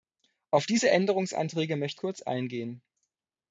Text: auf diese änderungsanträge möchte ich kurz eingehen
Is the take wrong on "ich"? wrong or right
wrong